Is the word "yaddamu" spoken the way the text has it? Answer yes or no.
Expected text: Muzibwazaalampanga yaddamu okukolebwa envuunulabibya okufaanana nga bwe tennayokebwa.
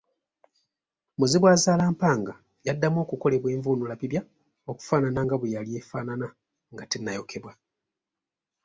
yes